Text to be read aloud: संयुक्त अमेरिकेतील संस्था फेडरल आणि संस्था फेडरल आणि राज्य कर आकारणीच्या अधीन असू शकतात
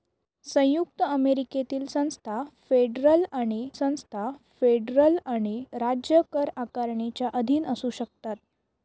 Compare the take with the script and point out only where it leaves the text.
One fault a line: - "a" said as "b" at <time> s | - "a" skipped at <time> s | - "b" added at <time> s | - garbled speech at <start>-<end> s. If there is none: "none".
none